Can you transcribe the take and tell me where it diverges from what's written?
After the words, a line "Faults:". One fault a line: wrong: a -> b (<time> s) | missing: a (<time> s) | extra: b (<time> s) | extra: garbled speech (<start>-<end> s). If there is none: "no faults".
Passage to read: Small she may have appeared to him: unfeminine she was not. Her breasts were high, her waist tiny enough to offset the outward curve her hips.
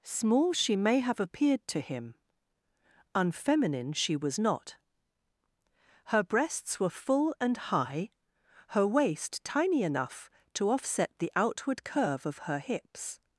Small she may have appeared to him: unfeminine she was not. Her breasts were full and high, her waist tiny enough to offset the outward curve of her hips.
Faults:
extra: full and (6.9 s)
extra: of (12.3 s)